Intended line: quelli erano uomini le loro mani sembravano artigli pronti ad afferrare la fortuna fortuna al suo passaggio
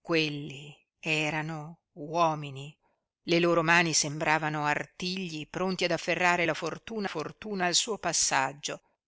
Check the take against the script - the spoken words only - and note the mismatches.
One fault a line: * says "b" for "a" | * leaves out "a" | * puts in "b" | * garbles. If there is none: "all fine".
all fine